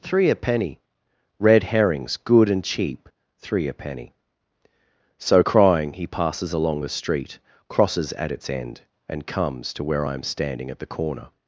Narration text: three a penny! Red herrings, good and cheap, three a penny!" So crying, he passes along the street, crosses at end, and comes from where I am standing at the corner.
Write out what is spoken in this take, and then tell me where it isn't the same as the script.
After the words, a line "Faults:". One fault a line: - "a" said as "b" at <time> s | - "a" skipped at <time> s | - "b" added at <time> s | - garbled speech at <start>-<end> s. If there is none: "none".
three a penny! Red herrings, good and cheap, three a penny!" So crying, he passes along the street, crosses at its end, and comes to where I am standing at the corner.
Faults:
- "its" added at 8.3 s
- "from" said as "to" at 9.7 s